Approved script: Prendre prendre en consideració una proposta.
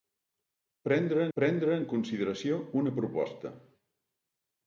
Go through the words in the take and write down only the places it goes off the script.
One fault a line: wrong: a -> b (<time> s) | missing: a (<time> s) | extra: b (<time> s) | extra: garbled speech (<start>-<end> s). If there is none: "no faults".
no faults